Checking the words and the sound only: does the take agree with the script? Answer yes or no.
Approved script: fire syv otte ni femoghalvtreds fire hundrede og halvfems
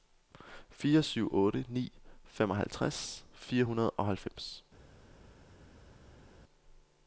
yes